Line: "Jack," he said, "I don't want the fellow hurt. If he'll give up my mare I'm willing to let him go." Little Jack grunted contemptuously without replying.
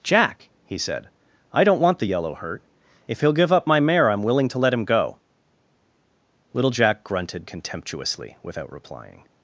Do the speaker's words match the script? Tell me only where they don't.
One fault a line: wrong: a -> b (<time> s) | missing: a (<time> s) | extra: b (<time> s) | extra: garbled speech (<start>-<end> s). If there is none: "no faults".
wrong: fellow -> yellow (2.0 s)